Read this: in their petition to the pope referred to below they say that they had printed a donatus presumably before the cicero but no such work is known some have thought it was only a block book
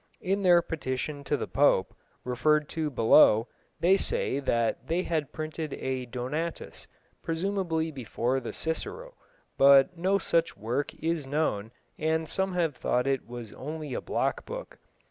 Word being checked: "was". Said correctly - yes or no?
yes